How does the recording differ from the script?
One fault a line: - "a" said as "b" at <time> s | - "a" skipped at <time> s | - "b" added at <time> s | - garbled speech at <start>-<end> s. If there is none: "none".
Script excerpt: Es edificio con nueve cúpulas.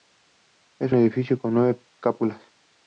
none